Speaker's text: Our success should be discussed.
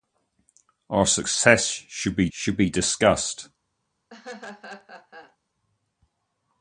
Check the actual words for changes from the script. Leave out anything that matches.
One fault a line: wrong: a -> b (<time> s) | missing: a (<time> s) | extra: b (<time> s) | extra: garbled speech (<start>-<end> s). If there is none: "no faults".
extra: should be (2.3 s)